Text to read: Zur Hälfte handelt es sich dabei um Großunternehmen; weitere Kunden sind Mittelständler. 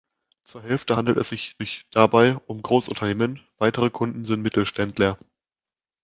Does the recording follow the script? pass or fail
fail